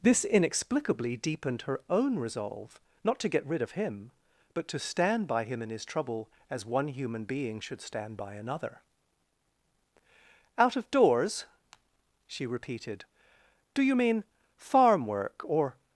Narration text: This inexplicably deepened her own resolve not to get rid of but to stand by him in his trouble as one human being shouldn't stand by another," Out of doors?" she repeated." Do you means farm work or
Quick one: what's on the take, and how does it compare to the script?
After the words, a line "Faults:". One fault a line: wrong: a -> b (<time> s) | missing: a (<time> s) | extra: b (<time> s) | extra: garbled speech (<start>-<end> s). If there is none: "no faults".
This inexplicably deepened her own resolve not to get rid of him, but to stand by him in his trouble as one human being should stand by another," Out of doors?" she repeated." Do you mean farm work or
Faults:
extra: him (3.7 s)
wrong: shouldn't -> should (7.6 s)
wrong: means -> mean (13.9 s)